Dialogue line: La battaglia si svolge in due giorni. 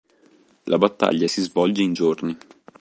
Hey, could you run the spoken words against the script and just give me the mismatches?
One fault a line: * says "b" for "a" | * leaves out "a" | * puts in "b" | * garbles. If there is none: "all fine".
* leaves out "due"